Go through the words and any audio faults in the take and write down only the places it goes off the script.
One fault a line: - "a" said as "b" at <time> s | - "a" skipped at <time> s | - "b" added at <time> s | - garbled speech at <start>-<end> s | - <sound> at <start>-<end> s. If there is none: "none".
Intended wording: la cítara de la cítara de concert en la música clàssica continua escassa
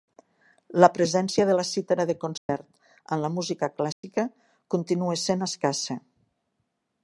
- "cítara" said as "presència" at 0.9 s
- dropout at 2.4-2.5 s
- dropout at 3.9-4.0 s
- "sent" added at 5.3 s